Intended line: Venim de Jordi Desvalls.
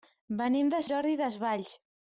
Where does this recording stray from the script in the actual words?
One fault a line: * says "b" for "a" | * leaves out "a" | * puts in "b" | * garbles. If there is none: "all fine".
all fine